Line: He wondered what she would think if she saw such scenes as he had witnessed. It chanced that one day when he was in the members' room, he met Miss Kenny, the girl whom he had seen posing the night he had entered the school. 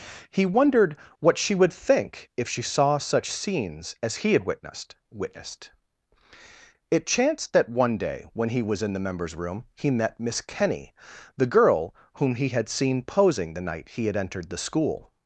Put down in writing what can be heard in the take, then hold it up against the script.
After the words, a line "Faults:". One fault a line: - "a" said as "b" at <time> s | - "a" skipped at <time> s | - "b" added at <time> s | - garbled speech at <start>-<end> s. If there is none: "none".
He wondered what she would think if she saw such scenes as he had witnessed witnessed. It chanced that one day when he was in the members' room, he met Miss Kenny, the girl whom he had seen posing the night he had entered the school.
Faults:
- "witnessed" added at 5.1 s